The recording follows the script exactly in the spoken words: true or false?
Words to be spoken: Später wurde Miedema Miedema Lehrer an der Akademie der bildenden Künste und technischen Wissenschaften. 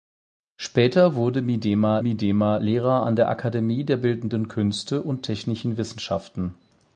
true